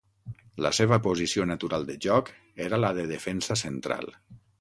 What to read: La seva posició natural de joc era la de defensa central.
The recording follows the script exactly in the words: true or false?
true